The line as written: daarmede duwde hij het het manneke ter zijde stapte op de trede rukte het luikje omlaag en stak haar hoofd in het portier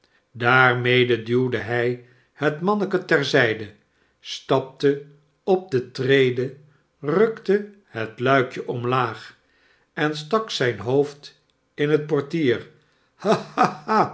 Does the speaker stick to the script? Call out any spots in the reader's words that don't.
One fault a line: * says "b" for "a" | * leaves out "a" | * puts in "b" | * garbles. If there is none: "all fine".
* leaves out "het"
* says "zijn" for "haar"